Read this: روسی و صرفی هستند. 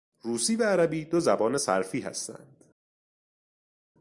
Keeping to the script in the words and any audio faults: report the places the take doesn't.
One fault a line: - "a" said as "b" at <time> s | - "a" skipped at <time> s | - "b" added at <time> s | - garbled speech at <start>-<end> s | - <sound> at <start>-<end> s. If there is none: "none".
- "عربی دو زبان" added at 0.6 s